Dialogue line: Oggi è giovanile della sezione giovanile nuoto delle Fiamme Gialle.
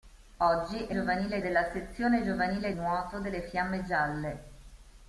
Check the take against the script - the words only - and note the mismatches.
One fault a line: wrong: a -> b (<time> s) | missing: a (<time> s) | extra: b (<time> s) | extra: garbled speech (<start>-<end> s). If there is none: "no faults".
no faults